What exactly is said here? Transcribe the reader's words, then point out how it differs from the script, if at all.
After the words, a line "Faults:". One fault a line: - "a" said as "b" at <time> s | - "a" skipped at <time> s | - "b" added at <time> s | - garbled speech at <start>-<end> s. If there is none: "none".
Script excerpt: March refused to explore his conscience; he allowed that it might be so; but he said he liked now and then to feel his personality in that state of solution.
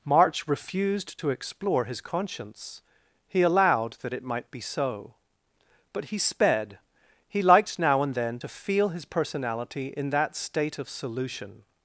March refused to explore his conscience; he allowed that it might be so; but he sped he liked now and then to feel his personality in that state of solution.
Faults:
- "said" said as "sped" at 6.2 s